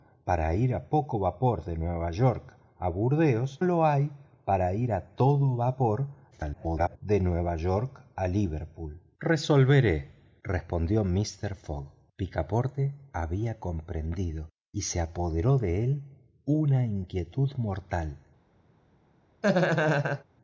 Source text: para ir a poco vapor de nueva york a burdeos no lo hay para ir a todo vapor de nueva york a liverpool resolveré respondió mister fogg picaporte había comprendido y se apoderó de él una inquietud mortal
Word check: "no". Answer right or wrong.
wrong